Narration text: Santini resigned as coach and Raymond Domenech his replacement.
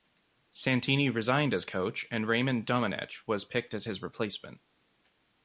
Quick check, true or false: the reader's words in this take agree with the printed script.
false